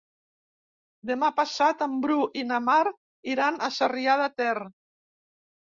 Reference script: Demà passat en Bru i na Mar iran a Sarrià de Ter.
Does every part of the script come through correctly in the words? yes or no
yes